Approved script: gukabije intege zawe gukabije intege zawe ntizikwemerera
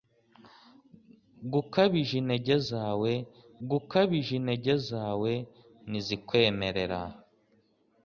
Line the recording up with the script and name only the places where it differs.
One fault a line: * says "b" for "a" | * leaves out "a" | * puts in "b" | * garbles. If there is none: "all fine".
all fine